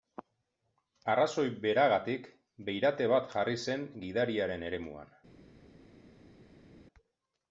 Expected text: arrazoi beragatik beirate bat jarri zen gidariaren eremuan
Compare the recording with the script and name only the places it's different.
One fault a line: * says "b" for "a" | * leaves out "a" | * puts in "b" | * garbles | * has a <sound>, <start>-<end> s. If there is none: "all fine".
all fine